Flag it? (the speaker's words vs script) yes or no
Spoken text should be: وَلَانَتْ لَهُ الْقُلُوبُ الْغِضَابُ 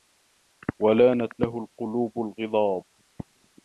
no